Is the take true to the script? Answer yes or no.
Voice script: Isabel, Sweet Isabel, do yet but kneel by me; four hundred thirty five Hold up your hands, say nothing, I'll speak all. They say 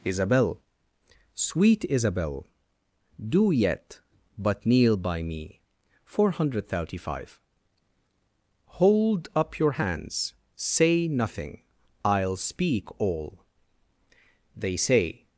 yes